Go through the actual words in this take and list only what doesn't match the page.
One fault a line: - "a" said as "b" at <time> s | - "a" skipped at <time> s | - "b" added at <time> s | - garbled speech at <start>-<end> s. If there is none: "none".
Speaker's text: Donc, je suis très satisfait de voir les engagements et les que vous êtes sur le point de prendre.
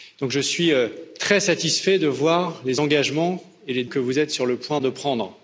none